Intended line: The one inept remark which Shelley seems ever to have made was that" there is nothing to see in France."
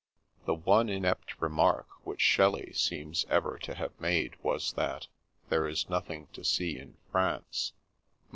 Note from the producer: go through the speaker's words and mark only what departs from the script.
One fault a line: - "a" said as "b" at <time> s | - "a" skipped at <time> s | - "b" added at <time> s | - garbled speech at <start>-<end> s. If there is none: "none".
none